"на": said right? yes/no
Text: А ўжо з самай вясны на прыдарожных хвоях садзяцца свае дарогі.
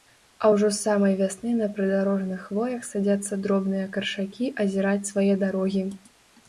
yes